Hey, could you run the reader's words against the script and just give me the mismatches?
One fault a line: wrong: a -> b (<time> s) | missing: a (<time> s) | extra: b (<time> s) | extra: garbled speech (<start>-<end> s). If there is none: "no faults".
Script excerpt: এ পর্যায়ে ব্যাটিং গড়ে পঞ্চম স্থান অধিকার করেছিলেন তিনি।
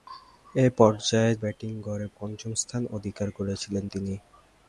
no faults